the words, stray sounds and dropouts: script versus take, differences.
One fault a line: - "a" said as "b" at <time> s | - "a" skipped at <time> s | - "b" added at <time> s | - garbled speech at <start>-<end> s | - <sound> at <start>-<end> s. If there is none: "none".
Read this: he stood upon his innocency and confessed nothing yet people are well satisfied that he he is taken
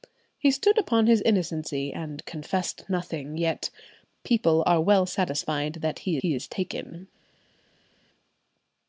none